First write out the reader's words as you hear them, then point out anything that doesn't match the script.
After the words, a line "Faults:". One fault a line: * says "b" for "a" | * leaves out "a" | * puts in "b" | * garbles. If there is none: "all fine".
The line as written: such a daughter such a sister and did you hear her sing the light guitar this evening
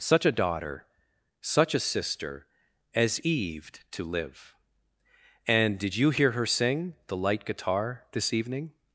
such a daughter such a sister as eve to live and did you hear her sing the light guitar this evening
Faults:
* puts in "as eve to live"